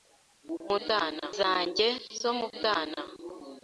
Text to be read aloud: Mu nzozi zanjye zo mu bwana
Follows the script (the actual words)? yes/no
no